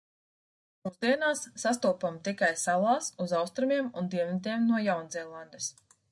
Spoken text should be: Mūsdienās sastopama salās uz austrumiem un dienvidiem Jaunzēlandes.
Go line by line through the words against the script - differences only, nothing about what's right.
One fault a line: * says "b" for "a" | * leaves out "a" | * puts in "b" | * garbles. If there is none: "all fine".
* puts in "tikai"
* puts in "no"